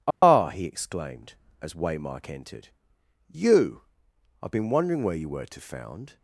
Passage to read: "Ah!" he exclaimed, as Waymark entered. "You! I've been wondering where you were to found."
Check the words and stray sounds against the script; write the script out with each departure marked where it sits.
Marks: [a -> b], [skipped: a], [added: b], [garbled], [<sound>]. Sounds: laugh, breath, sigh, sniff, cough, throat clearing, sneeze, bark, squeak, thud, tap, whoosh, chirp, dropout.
"Ah!" [dropout] he exclaimed, as Waymark entered. "You! I've been wondering where you were to found."